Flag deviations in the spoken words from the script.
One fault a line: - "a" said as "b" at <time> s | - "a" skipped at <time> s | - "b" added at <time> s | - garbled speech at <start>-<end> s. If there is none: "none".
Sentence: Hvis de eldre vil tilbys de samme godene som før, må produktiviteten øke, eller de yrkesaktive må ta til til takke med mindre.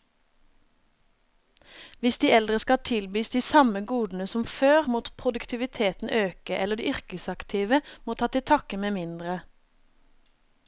- "vil" said as "skal" at 2.6 s
- "til" skipped at 8.4 s